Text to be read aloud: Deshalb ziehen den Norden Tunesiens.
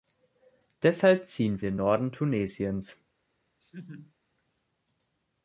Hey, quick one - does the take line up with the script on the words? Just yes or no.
yes